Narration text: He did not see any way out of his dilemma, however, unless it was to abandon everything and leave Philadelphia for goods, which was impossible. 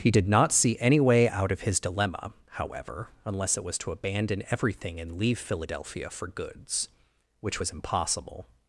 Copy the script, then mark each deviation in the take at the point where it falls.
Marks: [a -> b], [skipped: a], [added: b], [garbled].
He did not see any way out of his dilemma, however, unless it was to abandon everything and leave Philadelphia for goods, which was impossible.